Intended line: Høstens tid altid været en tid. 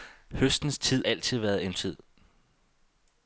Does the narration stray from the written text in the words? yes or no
no